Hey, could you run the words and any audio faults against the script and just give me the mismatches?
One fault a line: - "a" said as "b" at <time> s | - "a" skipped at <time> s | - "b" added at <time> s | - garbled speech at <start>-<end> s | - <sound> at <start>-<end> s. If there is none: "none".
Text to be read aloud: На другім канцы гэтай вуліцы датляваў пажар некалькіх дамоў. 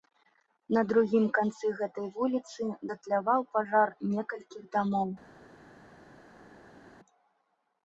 none